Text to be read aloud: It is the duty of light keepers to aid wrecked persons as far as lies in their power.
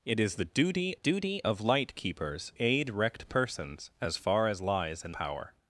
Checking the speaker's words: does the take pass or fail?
fail